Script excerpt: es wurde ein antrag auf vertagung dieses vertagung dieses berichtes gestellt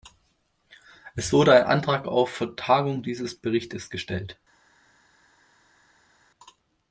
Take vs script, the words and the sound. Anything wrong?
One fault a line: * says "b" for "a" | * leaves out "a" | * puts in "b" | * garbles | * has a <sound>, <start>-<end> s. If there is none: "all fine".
* leaves out "vertagung dieses"